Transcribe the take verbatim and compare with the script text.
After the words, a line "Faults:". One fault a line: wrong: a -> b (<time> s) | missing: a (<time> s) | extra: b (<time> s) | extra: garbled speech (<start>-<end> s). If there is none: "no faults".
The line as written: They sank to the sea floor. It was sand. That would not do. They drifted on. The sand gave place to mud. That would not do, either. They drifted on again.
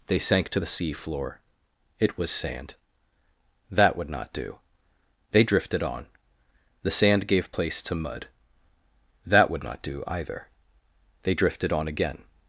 They sank to the sea floor. It was sand. That would not do. They drifted on. The sand gave place to mud. That would not do, either. They drifted on again.
Faults:
no faults